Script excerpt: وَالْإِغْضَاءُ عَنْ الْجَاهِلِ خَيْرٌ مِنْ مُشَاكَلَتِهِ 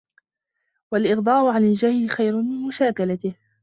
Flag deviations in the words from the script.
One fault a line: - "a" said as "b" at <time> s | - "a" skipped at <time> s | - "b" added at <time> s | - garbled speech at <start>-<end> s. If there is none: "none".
none